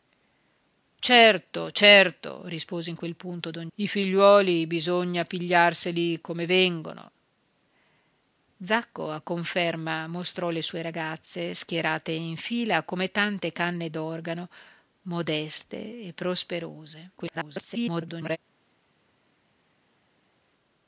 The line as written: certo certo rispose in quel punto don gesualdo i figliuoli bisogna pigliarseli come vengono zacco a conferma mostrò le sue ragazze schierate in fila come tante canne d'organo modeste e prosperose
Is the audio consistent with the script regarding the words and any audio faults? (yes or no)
no